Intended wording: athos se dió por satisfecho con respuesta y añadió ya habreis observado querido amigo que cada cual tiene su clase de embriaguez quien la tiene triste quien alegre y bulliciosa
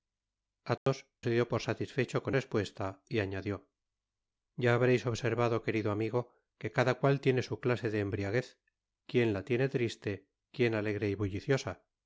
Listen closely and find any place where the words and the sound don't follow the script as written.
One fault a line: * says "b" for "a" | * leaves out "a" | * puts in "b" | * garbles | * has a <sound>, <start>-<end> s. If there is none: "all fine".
* has a dropout, 0.8-0.9 s